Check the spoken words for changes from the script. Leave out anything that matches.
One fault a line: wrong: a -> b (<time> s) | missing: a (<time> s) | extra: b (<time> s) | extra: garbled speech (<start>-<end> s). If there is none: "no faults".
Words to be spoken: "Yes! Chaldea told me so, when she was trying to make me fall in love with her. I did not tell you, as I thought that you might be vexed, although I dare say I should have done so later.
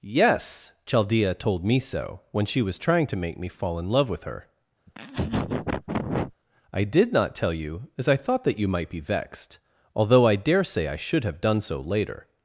no faults